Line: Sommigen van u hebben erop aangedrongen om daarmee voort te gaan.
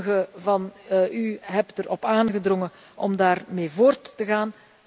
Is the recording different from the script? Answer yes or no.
no